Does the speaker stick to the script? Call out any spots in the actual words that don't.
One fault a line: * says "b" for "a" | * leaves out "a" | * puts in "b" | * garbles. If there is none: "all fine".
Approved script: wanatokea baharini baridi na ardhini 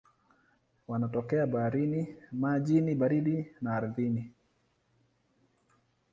* puts in "majini"